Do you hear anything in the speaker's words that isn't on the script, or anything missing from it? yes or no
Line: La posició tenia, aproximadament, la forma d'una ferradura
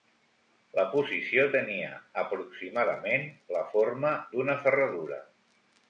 no